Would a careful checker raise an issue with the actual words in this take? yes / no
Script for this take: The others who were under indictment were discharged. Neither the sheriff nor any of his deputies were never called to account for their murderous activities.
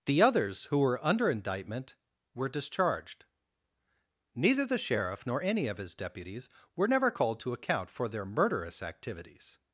no